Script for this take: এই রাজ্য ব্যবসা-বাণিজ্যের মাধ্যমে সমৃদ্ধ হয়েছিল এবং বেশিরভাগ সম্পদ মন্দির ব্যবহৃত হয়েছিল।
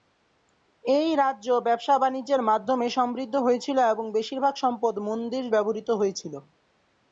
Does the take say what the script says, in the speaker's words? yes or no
yes